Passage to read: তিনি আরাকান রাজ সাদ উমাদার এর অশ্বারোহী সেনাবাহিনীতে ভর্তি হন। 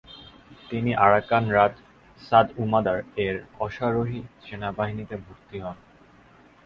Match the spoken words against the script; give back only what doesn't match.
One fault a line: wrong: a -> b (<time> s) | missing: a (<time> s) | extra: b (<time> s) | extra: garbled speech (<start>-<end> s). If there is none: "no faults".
no faults